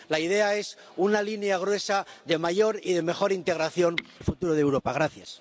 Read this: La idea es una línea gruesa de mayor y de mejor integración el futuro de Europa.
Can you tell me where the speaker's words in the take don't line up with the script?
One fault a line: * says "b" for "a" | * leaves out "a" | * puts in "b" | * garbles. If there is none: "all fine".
all fine